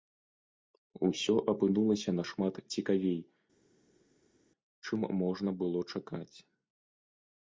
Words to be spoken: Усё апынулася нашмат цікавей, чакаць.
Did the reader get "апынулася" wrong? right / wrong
right